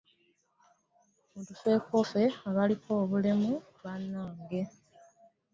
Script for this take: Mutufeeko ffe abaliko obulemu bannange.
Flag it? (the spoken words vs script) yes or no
no